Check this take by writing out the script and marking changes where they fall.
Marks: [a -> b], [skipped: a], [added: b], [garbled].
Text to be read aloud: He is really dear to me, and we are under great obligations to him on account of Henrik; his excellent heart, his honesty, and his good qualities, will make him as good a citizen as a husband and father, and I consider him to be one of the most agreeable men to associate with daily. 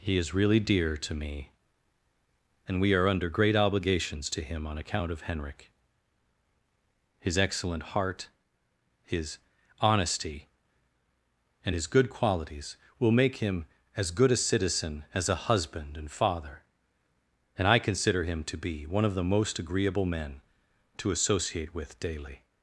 He is really dear to me, and we are under great obligations to him on account of Henrik; his excellent heart, his honesty, and his good qualities, will make him as good a citizen as a husband and father, and I consider him to be one of the most agreeable men to associate with daily.